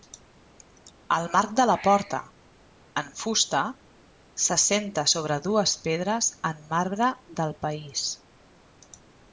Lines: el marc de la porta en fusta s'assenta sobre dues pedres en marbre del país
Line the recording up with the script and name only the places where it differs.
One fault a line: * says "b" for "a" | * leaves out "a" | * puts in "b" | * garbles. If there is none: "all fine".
all fine